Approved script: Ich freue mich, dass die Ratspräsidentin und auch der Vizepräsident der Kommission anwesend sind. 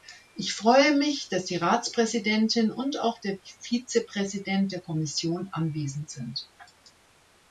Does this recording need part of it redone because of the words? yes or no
no